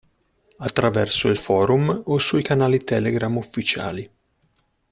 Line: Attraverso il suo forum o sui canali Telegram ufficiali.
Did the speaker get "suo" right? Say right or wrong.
wrong